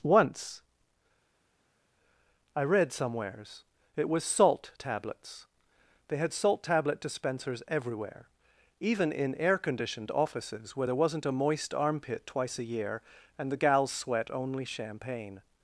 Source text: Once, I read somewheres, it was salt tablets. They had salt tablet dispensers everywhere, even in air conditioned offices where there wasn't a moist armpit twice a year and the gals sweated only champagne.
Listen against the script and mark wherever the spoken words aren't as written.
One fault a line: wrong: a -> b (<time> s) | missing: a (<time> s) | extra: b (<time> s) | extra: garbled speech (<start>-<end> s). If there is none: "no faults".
wrong: sweated -> sweat (13.9 s)